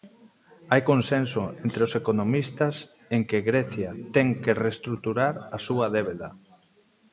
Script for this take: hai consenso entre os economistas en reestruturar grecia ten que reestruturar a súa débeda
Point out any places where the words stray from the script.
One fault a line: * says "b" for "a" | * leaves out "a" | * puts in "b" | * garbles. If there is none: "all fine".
* says "que" for "reestruturar"